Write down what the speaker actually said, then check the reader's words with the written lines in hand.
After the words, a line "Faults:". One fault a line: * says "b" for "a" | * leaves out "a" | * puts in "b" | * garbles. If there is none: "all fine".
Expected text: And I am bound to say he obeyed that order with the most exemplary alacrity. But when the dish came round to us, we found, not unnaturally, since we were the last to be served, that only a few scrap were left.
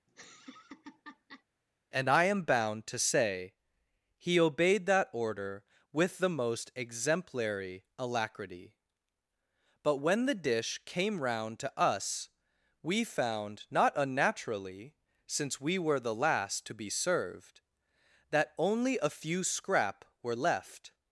And I am bound to say he obeyed that order with the most exemplary alacrity. But when the dish came round to us, we found, not unnaturally, since we were the last to be served, that only a few scrap were left.
Faults:
all fine